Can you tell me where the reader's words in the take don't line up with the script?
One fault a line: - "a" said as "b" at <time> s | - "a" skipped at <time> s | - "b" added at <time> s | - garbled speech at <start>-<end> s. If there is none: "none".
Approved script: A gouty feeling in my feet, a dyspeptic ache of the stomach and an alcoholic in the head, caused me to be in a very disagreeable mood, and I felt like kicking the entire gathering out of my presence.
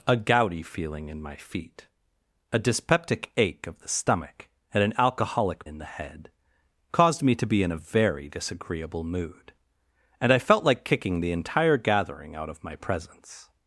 none